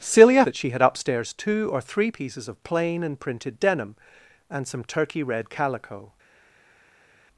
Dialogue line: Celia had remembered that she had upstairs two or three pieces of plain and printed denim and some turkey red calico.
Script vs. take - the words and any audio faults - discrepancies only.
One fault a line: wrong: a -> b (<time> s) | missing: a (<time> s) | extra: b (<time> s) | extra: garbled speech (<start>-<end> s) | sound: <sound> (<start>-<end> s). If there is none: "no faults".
missing: had remembered (0.5 s)